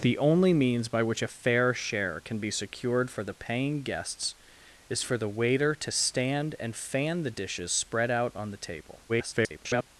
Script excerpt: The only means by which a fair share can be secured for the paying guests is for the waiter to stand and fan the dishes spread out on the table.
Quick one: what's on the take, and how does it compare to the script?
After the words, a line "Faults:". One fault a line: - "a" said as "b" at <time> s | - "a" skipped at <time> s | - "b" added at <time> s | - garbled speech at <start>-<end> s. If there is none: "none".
The only means by which a fair share can be secured for the paying guests is for the waiter to stand and fan the dishes spread out on the table. [garbled]
Faults:
- garbled speech at 9.1-9.9 s